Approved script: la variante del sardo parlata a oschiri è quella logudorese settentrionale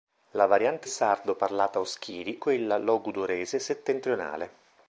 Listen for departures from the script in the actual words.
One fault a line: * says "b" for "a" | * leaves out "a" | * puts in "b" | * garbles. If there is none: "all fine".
* leaves out "del"
* leaves out "è"